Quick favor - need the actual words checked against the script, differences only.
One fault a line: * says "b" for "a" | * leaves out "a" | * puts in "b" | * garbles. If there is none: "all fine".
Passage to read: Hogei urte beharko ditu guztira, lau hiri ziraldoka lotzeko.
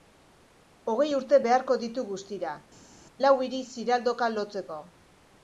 all fine